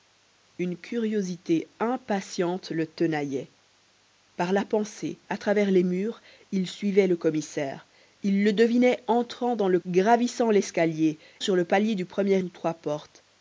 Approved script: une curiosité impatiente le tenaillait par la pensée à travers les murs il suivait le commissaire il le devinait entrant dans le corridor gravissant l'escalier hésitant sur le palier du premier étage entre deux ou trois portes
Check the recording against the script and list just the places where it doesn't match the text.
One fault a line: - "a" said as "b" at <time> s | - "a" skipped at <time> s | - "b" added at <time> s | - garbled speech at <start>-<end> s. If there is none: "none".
- "corridor" skipped at 9.8 s
- "hésitant" skipped at 11.2 s
- "étage entre deux" skipped at 12.4 s